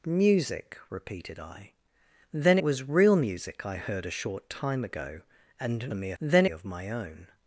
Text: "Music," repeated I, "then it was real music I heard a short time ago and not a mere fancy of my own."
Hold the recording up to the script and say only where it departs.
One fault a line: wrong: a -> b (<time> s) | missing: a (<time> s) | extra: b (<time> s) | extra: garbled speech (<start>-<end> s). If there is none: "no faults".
missing: it (2.6 s)
missing: not (5.9 s)
wrong: fancy -> then (6.2 s)